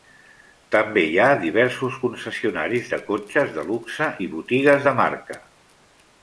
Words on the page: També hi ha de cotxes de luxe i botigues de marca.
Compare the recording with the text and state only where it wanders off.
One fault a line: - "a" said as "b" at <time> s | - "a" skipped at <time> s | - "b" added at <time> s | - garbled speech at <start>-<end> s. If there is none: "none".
- "diversos concessionaris" added at 1.4 s